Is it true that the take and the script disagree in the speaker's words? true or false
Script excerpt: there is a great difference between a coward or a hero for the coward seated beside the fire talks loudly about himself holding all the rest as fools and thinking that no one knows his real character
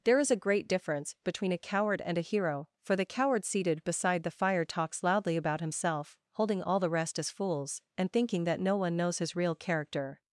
true